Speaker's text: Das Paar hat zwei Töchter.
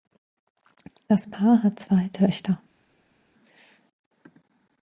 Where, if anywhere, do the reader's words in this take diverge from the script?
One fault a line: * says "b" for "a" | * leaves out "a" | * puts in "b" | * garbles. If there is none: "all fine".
all fine